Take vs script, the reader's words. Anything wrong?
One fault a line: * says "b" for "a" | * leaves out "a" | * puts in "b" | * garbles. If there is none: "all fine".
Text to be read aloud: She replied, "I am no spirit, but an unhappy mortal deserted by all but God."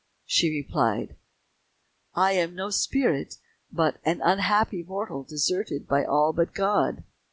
all fine